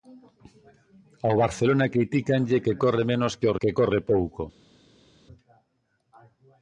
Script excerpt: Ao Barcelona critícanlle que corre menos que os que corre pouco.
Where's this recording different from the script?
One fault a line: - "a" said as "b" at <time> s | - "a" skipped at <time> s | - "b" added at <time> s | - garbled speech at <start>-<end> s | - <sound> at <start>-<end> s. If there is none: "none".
none